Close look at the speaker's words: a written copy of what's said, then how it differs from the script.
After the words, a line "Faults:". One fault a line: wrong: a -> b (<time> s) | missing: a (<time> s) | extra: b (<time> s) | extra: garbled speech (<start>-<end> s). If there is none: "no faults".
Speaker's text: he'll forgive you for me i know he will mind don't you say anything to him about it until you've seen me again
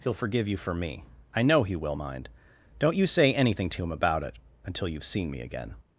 he'll forgive you for me i know he will mind don't you say anything to him about it until you've seen me again
Faults:
no faults